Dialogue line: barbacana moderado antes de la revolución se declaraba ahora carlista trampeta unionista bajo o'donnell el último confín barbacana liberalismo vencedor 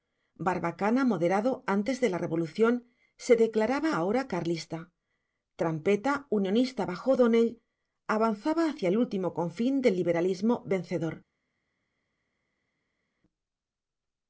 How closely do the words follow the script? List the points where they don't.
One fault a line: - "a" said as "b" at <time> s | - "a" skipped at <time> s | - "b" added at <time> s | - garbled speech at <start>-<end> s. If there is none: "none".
- "avanzaba hacia" added at 8.2 s
- "barbacana" said as "del" at 9.8 s